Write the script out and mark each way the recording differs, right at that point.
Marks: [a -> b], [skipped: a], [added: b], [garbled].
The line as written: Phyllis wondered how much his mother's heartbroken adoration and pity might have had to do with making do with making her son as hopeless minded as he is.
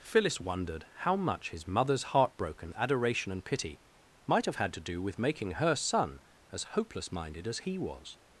Phyllis wondered how much his mother's heartbroken adoration and pity might have had to do with making [skipped: do with making] her son as hopeless minded as he [is. -> was]